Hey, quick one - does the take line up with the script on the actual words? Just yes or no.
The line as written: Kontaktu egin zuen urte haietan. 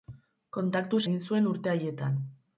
yes